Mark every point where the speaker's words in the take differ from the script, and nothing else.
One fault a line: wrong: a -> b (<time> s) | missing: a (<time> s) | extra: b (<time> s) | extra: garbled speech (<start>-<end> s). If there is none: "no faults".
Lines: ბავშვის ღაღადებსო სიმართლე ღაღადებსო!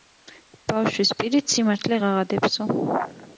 wrong: ღაღადებსო -> პირით (1.2 s)